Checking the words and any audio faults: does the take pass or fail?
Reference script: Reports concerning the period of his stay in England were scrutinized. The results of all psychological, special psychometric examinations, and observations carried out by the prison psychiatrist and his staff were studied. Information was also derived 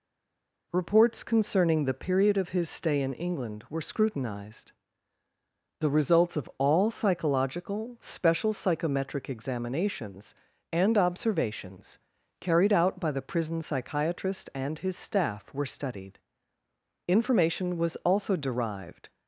pass